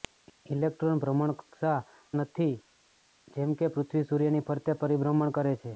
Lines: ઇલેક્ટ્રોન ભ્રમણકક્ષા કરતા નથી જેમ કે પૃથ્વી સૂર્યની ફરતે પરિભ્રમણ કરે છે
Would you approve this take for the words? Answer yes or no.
no